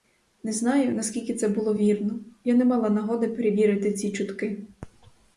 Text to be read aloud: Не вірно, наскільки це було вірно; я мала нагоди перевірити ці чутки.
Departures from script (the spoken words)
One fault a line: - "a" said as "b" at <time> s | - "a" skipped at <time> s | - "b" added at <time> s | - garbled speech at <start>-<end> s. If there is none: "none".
- "вірно" said as "знаю" at 0.5 s
- "не" added at 2.5 s